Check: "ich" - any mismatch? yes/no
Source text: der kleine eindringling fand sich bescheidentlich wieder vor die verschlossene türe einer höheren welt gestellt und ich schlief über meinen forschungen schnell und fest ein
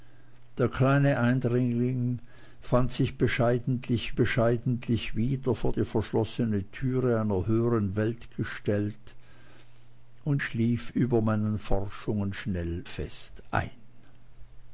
yes